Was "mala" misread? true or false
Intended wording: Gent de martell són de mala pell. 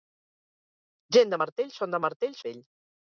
true